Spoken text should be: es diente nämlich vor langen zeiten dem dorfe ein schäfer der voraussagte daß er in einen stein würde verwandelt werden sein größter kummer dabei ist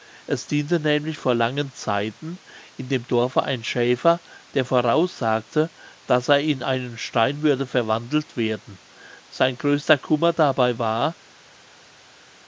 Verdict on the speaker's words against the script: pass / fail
fail